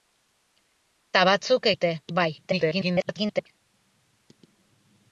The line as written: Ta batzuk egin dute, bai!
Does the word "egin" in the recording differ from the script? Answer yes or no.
yes